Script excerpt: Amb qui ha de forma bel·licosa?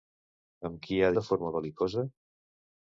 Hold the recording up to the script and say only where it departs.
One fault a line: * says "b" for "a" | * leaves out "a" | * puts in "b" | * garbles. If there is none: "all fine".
all fine